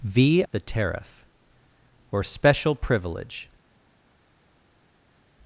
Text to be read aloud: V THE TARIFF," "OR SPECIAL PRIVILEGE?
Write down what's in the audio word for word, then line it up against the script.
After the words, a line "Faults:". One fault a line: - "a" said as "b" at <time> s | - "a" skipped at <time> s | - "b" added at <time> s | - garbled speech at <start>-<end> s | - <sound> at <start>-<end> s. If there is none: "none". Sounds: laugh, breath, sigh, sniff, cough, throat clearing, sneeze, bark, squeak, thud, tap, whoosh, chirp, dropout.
V THE TARIFF," "OR SPECIAL PRIVILEGE?
Faults:
none